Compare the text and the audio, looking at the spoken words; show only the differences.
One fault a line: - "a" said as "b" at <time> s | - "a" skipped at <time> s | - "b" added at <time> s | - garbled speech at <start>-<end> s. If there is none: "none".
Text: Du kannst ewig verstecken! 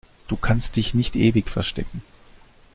- "dich nicht" added at 0.8 s